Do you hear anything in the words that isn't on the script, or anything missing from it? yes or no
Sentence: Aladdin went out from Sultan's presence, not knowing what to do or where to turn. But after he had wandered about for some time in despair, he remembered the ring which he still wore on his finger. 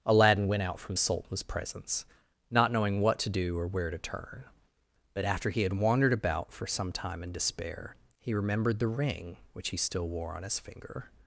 no